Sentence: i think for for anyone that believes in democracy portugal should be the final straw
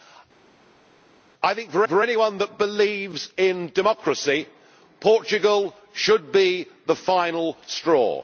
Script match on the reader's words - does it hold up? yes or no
yes